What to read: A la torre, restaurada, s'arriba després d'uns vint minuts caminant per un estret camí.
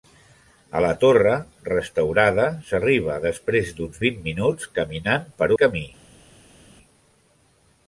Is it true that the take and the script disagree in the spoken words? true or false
true